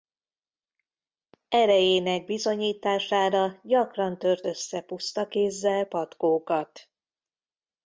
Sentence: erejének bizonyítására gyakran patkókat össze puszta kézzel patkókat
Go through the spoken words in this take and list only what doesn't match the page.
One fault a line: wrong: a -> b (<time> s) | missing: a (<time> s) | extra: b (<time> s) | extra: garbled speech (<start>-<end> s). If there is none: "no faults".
wrong: patkókat -> tört (4.2 s)